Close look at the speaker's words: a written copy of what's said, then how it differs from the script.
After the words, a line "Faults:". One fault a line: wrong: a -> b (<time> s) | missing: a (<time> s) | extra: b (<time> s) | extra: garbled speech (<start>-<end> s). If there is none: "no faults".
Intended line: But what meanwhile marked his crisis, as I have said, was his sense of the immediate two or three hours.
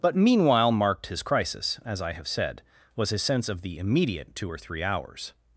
But meanwhile marked his crisis, as I have said, was his sense of the immediate two or three hours.
Faults:
missing: what (0.1 s)